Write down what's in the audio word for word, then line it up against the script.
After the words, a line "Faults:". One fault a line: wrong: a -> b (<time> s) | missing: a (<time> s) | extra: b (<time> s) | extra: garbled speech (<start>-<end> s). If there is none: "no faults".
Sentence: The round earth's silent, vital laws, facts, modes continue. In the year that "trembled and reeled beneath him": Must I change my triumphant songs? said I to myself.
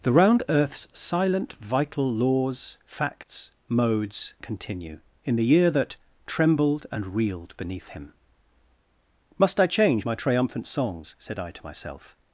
The round earth's silent, vital laws, facts, modes continue. In the year that "trembled and reeled beneath him": Must I change my triumphant songs? said I to myself.
Faults:
no faults